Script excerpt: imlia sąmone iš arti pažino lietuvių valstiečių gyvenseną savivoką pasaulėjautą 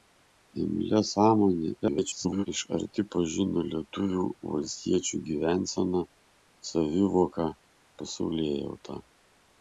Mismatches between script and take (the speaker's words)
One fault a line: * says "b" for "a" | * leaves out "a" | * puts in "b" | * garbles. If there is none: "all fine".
* garbles